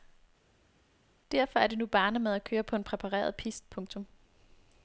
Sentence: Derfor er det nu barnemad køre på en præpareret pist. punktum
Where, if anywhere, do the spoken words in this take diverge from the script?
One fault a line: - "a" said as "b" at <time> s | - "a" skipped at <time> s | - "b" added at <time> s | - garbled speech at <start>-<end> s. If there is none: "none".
- "at" added at 2.3 s